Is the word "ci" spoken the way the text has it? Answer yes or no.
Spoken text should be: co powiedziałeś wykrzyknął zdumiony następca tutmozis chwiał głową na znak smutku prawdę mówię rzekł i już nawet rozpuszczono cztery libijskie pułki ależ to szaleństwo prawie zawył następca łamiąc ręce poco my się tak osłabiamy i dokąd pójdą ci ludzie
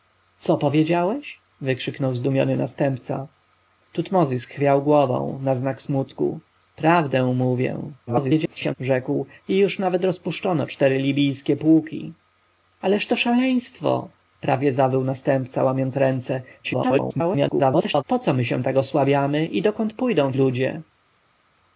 no